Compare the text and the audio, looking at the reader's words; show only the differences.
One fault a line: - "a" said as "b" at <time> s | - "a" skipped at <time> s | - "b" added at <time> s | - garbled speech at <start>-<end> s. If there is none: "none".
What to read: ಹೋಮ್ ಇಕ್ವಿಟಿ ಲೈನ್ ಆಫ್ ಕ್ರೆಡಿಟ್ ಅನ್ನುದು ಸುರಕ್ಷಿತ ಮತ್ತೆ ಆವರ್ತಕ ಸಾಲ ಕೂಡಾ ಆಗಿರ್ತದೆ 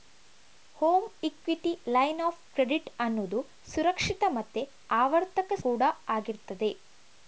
- "ಸಾಲ" skipped at 5.6 s